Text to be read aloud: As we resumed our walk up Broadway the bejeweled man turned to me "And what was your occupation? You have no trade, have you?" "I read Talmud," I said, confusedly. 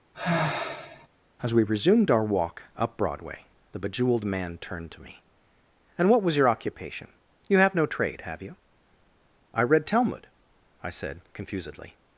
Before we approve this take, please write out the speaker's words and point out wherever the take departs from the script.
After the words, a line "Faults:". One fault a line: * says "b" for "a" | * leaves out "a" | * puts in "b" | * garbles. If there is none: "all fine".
As we resumed our walk up Broadway the bejeweled man turned to me "And what was your occupation? You have no trade, have you?" "I read Talmud," I said, confusedly.
Faults:
all fine